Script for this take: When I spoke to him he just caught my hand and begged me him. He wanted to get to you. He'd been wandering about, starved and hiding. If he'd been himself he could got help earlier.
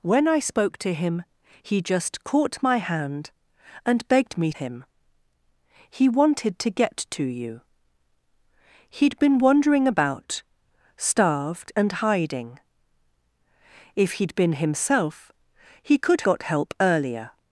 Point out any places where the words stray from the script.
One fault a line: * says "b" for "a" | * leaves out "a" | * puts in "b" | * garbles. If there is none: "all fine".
all fine